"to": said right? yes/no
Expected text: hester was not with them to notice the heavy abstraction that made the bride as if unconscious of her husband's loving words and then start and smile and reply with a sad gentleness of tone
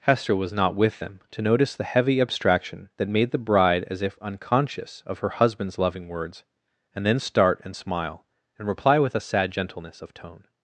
yes